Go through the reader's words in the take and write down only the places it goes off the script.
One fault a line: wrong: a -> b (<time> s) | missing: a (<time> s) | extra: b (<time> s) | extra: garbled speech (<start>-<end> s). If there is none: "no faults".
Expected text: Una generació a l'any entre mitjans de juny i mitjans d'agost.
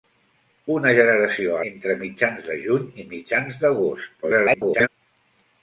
missing: l'any (1.6 s)
extra: garbled speech (4.2-4.9 s)